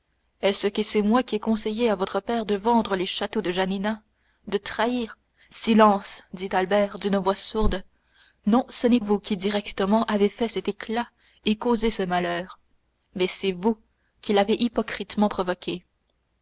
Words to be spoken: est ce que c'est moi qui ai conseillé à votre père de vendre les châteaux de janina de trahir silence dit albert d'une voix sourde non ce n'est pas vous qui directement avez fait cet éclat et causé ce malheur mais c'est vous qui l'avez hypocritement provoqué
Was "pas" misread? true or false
true